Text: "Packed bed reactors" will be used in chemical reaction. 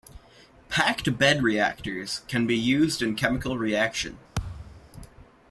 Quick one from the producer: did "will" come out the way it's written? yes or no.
no